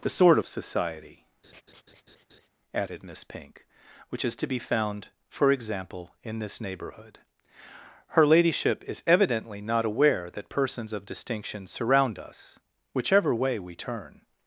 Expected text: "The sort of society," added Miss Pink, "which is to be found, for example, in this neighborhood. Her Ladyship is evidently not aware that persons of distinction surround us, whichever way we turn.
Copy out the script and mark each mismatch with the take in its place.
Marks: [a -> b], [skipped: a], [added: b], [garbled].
"The sort of society," added Miss Pink, "which is to be found, for example, in this neighborhood. Her Ladyship is evidently not aware that persons of distinction surround us, whichever way we turn.